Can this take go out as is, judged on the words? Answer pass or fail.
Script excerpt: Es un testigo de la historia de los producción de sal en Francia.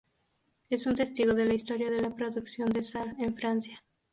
fail